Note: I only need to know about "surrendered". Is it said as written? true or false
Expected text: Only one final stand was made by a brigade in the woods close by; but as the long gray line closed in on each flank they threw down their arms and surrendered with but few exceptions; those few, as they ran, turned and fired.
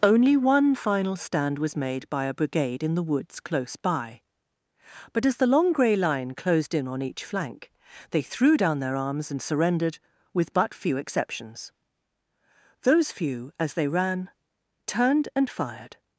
true